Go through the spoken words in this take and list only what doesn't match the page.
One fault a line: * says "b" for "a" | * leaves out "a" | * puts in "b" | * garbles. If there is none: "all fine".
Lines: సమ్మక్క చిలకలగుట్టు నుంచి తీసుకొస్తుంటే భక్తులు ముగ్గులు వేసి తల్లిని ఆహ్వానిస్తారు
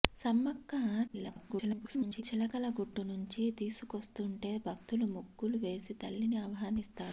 * garbles